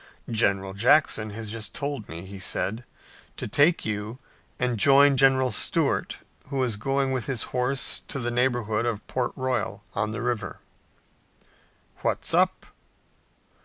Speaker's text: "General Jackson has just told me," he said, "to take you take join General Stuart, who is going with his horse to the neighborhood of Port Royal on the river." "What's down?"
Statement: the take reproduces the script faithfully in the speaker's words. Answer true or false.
false